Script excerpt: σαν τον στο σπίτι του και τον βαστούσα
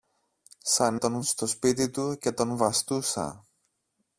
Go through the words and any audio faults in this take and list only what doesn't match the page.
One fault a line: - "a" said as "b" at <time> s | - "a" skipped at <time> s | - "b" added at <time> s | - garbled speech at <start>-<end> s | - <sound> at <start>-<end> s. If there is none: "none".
none